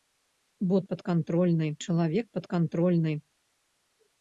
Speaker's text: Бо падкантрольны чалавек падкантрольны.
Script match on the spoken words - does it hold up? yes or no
yes